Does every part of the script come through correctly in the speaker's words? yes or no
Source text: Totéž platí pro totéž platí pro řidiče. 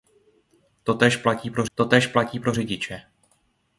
yes